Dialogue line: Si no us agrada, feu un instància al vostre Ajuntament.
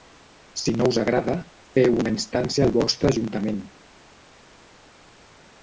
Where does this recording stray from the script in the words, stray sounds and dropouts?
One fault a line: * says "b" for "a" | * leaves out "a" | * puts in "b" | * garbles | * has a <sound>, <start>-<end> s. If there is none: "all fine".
* says "una" for "un"